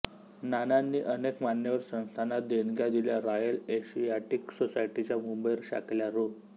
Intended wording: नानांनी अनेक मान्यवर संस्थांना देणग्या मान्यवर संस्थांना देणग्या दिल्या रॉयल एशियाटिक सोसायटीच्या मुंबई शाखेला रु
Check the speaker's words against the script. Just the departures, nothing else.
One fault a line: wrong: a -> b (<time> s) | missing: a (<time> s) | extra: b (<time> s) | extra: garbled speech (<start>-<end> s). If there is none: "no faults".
missing: मान्यवर संस्थांना देणग्या (2.9 s)